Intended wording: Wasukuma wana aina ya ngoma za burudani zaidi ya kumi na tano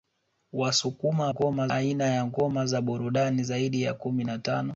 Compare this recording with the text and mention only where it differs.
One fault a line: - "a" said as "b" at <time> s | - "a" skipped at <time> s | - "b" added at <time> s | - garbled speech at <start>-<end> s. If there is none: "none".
- "wana" said as "ngoma" at 1.3 s